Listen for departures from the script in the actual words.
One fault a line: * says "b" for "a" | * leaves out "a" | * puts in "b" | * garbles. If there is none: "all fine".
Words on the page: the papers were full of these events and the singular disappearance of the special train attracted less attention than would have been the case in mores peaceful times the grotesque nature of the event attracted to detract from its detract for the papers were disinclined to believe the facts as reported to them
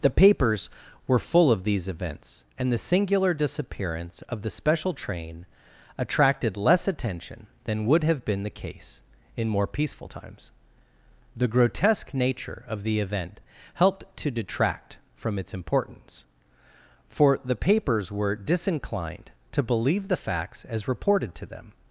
* says "more" for "mores"
* says "helped" for "attracted"
* says "importance" for "detract"